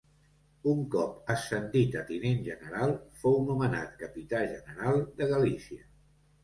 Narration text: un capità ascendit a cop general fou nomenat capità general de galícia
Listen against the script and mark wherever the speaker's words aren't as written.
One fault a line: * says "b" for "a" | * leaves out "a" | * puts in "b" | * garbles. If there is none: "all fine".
* says "cop" for "capità"
* says "tinent" for "cop"